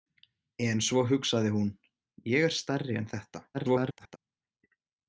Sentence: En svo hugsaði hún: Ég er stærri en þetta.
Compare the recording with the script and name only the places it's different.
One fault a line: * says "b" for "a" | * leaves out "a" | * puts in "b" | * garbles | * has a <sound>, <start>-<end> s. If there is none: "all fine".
* garbles